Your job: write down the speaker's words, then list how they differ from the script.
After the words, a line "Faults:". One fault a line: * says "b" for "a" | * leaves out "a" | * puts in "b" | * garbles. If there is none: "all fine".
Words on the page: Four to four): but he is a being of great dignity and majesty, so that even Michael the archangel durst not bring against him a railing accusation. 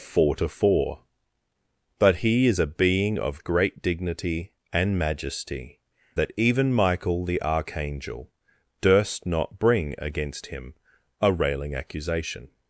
Four to four): but he is a being of great dignity and majesty, that even Michael the archangel durst not bring against him a railing accusation.
Faults:
* leaves out "so"